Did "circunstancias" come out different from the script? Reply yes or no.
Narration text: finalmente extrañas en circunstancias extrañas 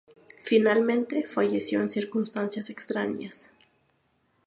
no